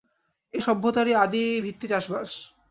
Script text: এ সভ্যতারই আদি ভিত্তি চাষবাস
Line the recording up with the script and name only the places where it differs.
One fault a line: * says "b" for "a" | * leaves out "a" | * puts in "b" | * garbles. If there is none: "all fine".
all fine